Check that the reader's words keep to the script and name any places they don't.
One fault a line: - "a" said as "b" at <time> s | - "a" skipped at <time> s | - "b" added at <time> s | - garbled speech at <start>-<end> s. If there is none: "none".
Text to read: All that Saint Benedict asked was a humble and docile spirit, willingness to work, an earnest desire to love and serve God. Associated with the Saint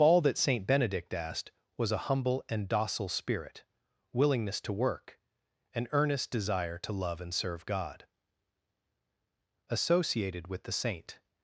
none